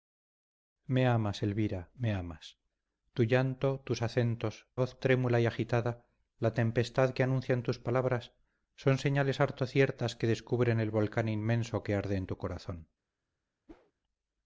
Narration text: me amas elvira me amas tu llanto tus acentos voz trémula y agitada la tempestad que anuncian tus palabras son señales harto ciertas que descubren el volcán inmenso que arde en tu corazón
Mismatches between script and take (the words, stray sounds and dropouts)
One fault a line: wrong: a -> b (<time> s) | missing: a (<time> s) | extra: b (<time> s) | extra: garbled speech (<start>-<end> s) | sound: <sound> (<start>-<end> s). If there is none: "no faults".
sound: whoosh (13.7-13.9 s)